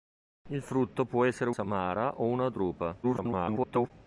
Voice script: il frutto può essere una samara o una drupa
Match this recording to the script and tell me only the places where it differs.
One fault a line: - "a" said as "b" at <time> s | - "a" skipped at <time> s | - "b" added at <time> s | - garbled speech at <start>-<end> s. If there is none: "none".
- "una" skipped at 1.5 s
- garbled speech at 3.0-3.9 s